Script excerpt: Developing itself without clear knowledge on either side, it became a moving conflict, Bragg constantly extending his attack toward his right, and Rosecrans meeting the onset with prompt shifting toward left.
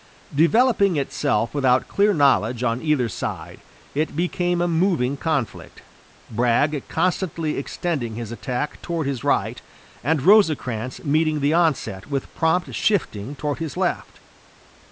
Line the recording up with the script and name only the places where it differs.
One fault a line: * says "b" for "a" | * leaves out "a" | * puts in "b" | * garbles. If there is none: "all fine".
* puts in "his"